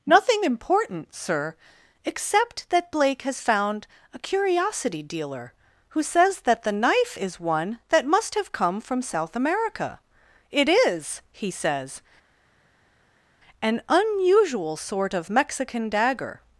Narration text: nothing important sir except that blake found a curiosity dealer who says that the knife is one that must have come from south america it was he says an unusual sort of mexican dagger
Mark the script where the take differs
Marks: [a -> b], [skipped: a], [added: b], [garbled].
nothing important sir except that blake [added: has] found a curiosity dealer who says that the knife is one that must have come from south america it [was -> is] he says an unusual sort of mexican dagger